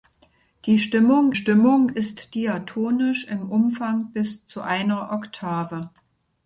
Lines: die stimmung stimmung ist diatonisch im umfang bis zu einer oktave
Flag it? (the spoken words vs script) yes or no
no